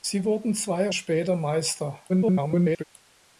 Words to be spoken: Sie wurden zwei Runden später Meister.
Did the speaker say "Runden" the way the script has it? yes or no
no